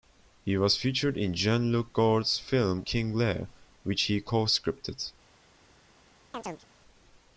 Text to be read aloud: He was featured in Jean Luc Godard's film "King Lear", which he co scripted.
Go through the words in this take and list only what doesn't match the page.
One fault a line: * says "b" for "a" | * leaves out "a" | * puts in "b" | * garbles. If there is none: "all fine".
all fine